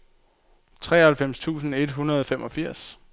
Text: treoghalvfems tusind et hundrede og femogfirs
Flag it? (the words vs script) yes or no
no